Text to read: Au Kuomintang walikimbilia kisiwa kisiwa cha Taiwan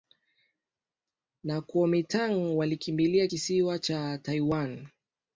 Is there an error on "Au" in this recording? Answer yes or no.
yes